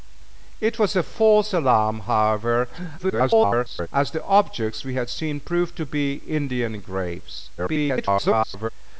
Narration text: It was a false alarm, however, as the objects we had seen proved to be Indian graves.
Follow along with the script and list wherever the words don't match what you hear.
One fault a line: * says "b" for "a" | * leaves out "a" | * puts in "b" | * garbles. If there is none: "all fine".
* garbles
* garbles